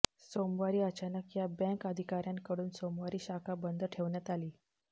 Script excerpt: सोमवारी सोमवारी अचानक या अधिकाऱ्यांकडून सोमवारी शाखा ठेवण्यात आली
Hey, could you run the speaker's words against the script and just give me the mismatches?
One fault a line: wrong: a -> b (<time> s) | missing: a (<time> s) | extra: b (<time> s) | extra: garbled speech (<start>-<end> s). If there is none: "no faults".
missing: सोमवारी (0.8 s)
extra: बँक (1.6 s)
extra: बंद (3.6 s)